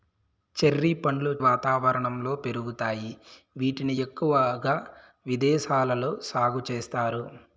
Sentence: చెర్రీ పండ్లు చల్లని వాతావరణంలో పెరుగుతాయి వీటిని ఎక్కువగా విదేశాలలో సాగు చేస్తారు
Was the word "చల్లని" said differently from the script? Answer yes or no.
yes